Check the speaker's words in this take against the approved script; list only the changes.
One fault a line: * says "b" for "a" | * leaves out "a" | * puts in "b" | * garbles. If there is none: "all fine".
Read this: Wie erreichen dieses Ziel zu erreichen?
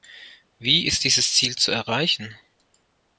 * says "ist" for "erreichen"